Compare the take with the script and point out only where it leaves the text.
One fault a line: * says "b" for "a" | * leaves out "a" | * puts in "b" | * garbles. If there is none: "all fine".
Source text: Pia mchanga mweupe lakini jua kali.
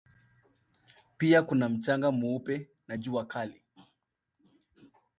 * puts in "kuna"
* says "na" for "lakini"